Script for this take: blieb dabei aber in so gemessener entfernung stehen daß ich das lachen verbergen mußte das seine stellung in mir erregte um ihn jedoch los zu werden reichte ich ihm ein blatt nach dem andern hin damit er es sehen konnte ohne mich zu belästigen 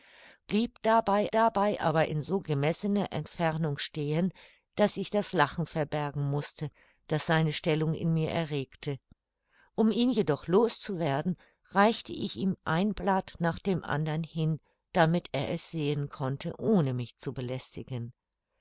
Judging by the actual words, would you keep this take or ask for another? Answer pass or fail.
fail